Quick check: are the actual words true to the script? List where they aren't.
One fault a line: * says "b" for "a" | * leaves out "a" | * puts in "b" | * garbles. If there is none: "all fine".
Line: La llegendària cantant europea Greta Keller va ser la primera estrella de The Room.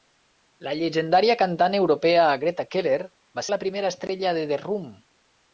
* leaves out "ser"